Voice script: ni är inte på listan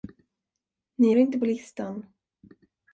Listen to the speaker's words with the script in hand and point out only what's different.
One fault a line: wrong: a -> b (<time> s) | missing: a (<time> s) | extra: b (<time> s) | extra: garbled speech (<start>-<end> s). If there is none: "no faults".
missing: är (1.1 s)